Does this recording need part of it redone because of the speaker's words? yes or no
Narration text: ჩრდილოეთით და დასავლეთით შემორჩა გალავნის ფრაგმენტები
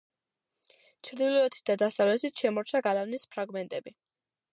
no